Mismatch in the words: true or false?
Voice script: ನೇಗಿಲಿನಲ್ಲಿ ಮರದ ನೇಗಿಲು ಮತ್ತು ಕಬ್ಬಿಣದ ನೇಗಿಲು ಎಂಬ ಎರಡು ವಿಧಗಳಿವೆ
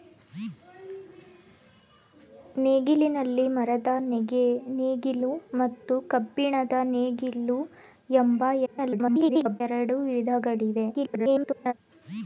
true